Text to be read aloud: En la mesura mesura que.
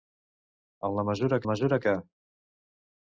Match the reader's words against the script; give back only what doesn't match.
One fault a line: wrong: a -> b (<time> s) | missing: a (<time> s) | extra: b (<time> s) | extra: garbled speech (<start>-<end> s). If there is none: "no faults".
no faults